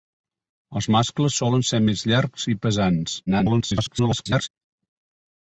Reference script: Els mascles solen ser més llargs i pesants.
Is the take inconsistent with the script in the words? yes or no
yes